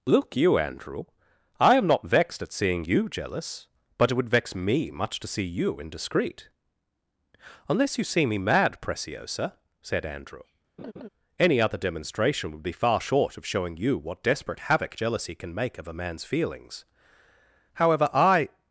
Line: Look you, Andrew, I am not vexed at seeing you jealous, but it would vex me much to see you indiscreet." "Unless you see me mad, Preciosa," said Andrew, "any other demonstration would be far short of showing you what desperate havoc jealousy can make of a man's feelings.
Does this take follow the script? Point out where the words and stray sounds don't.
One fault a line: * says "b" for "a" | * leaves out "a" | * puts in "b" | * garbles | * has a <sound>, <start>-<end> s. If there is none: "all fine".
* has a laugh, 10.8-11.1 s
* puts in "However I"